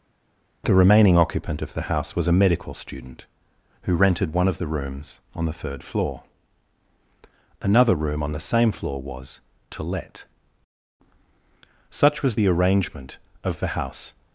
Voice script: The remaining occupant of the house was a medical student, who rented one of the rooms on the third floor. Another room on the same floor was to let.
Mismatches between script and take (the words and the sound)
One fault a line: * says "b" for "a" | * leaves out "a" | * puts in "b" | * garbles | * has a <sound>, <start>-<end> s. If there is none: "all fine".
* puts in "Such was the arrangement of the house"